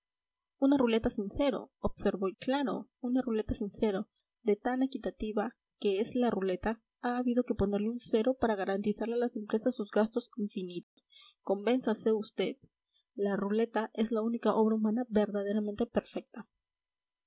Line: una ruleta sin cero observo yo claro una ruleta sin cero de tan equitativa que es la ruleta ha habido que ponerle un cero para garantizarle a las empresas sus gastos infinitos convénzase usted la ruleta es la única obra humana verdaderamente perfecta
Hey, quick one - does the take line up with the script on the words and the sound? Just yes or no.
no